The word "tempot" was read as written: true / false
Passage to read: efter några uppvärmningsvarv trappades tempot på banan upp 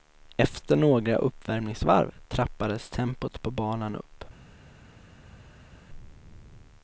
true